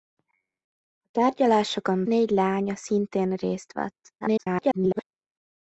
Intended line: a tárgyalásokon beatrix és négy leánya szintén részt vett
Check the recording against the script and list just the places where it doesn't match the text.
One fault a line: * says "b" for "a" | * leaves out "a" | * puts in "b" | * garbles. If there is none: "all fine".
* leaves out "beatrix és"
* garbles